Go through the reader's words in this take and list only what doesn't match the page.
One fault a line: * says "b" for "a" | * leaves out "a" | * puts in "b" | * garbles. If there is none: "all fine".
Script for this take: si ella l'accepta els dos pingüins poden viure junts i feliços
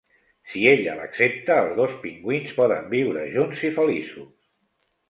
all fine